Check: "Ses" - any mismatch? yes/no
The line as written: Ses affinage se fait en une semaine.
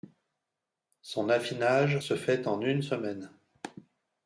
yes